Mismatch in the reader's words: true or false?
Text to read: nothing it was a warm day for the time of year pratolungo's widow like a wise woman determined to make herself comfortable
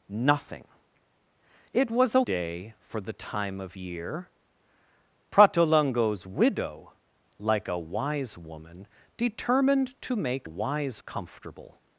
true